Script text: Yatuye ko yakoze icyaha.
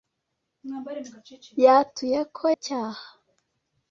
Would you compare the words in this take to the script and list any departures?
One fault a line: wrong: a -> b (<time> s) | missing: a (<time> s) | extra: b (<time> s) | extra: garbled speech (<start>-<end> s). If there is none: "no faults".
missing: yakoze (2.5 s)